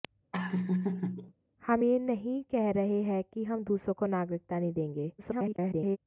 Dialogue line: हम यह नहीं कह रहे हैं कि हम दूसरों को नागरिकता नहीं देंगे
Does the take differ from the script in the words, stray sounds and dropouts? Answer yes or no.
yes